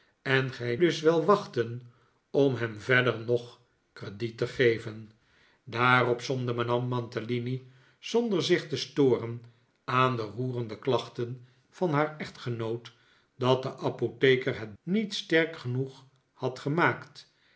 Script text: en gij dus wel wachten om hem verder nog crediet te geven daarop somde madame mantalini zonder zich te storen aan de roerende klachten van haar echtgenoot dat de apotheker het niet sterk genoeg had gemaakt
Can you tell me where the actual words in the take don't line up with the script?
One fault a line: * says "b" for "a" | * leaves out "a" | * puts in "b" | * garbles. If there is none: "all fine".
all fine